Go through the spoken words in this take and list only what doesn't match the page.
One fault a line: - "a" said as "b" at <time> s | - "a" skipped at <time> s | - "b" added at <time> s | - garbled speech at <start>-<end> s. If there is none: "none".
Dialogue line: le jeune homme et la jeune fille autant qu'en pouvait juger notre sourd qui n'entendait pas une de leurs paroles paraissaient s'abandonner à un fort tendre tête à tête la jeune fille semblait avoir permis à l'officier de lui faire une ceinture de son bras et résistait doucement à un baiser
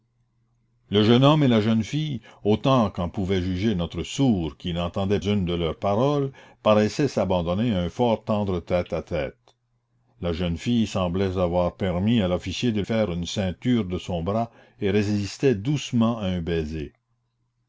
- "pas" skipped at 5.2 s
- "lui" skipped at 12.8 s